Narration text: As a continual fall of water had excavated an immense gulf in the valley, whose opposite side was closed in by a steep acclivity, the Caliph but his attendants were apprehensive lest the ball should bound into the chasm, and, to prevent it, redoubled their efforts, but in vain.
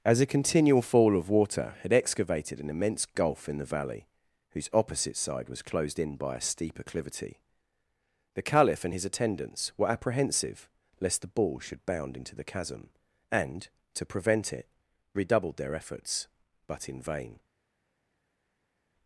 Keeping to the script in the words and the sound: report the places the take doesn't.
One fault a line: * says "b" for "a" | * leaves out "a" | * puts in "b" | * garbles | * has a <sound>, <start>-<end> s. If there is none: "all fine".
* says "and" for "but"